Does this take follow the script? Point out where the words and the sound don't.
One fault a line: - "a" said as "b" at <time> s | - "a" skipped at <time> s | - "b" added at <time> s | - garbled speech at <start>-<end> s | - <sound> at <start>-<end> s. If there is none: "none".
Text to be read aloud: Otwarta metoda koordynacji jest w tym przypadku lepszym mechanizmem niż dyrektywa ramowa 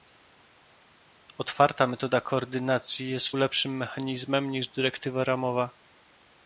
- "tym przypadku" skipped at 3.3 s